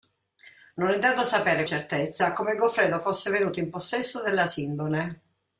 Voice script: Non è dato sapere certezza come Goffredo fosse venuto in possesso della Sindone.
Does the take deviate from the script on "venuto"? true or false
false